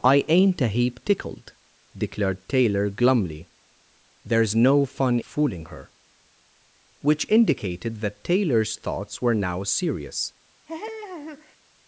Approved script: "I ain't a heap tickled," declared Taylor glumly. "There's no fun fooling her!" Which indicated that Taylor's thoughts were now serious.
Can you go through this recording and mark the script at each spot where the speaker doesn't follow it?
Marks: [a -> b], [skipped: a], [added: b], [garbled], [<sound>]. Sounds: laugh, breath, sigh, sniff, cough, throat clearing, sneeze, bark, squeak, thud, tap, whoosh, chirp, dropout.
"I ain't a heap tickled," declared Taylor glumly. "There's no fun fooling her!" Which indicated that Taylor's thoughts were now serious. [laugh]